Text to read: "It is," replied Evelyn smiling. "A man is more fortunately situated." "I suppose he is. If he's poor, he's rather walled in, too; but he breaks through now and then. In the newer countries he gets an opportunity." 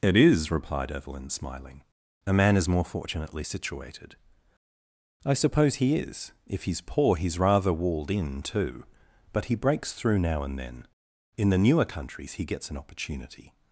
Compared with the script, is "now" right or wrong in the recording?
right